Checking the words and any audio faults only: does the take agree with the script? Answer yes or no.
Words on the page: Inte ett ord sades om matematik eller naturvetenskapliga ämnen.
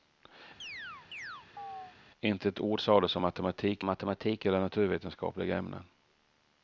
no